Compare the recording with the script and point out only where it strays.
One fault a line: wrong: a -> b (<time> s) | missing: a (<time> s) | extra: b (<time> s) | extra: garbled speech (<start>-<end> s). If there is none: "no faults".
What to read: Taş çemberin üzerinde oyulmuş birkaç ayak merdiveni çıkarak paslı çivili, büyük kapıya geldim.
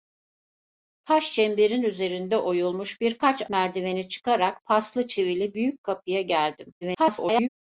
missing: ayak (3.5 s)
extra: garbled speech (6.8-7.5 s)